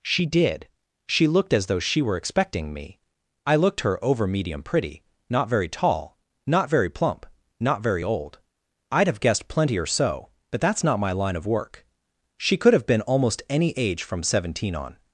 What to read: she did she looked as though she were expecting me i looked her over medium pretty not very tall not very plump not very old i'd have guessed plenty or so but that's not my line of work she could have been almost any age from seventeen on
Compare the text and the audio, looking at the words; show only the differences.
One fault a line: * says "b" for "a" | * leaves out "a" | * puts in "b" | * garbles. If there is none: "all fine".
all fine